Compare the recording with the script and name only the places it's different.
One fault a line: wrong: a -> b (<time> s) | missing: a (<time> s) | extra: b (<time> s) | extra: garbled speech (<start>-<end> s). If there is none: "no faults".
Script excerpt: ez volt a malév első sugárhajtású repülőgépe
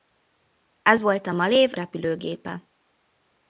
missing: első sugárhajtású (1.7 s)